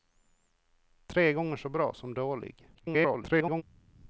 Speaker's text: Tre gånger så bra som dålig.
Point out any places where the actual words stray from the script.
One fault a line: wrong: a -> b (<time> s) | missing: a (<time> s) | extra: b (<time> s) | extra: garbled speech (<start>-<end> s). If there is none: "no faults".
extra: garbled speech (2.7-3.6 s)